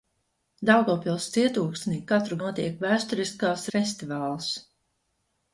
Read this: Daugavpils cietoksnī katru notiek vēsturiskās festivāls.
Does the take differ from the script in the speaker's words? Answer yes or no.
no